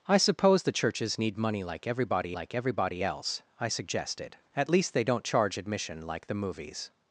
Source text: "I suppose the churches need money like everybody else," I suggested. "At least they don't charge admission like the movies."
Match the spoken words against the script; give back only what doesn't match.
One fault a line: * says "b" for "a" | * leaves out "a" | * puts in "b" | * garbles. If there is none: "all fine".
* puts in "like everybody"